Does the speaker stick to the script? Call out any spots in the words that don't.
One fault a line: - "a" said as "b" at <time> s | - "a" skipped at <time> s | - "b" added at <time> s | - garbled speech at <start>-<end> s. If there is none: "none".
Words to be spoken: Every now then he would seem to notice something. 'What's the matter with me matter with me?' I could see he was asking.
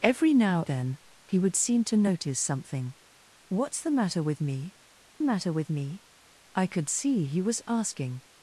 none